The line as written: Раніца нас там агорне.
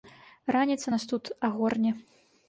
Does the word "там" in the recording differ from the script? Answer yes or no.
yes